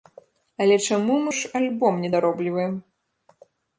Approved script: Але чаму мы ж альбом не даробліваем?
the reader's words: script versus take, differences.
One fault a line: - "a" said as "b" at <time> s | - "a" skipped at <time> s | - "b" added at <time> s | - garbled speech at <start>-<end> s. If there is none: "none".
none